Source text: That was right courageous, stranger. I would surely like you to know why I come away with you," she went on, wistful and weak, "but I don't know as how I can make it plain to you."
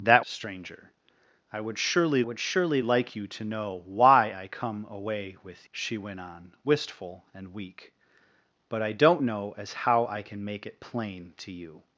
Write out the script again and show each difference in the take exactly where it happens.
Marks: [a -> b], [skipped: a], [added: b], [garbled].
That [skipped: was right courageous,] stranger. I would surely [added: would surely] like you to know why I come away with [skipped: you,"] she went on, wistful and weak, "but I don't know as how I can make it plain to you."